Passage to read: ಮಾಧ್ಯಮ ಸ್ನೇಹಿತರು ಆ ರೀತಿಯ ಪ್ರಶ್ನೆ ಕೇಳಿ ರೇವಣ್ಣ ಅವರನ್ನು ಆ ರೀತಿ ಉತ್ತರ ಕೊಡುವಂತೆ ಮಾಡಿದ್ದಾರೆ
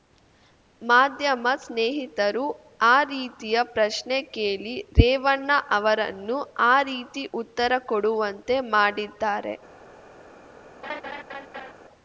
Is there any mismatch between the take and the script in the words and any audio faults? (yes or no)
yes